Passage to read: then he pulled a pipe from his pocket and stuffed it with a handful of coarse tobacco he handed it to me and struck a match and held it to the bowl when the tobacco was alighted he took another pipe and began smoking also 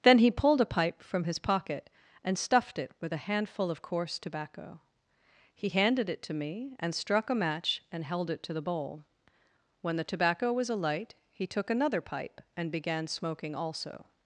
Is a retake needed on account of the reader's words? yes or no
yes